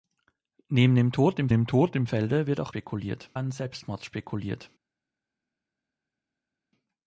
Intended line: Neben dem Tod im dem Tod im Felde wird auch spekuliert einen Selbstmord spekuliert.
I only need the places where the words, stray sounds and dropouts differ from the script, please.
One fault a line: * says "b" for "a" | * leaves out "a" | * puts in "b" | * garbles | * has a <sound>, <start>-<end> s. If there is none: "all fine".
all fine